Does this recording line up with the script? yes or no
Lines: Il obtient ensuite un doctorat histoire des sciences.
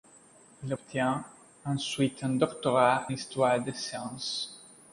yes